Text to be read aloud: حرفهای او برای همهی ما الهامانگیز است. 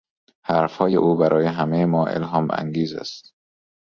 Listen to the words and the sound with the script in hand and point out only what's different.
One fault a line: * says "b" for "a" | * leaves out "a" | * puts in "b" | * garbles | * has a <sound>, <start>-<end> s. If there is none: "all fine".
all fine